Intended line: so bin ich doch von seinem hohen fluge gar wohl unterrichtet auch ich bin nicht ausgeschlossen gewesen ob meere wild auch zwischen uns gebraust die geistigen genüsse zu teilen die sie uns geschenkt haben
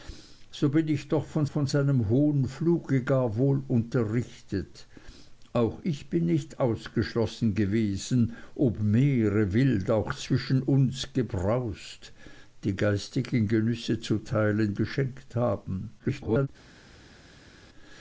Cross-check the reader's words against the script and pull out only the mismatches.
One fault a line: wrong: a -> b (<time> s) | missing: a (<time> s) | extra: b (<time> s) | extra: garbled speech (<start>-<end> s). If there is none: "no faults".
extra: von (1.5 s)
missing: die sie uns (14.7 s)
extra: garbled speech (16.0-16.5 s)